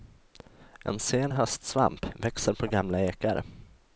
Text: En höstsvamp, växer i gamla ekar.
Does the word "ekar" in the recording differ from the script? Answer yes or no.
no